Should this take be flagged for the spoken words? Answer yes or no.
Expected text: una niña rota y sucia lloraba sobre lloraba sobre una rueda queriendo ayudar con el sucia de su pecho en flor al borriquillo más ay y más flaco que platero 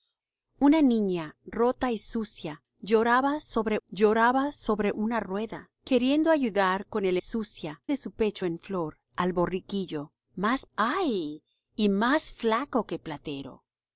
no